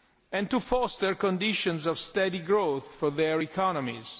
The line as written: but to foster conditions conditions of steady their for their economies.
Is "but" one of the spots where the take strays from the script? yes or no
yes